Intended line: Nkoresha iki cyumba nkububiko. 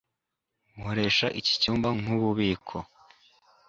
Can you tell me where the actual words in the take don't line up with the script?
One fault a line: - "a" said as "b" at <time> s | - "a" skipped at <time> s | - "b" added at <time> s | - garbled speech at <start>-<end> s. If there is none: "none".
none